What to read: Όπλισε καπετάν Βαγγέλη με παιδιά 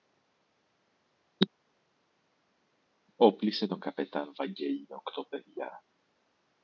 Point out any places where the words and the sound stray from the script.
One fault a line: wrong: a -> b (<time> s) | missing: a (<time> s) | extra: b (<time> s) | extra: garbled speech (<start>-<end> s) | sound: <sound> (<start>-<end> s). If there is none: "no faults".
extra: τον (3.7 s)
extra: οκτώ (5.0 s)